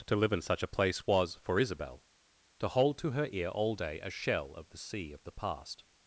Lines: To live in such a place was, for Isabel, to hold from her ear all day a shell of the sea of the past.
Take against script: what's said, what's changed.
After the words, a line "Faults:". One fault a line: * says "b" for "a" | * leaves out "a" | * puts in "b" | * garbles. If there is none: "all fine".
To live in such a place was, for Isabel, to hold to her ear all day a shell of the sea of the past.
Faults:
* says "to" for "from"